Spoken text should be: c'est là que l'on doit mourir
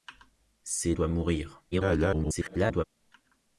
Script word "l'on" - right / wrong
wrong